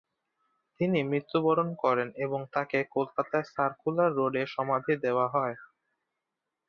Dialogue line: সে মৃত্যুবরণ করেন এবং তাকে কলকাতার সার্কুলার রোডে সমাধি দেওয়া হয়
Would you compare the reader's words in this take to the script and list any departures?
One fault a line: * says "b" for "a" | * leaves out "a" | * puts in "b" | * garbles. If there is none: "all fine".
* says "তিনি" for "সে"